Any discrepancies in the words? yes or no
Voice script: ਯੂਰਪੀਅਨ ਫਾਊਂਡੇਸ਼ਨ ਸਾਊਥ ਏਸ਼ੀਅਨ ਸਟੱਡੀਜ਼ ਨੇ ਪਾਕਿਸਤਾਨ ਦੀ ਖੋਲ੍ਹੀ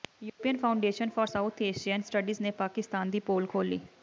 yes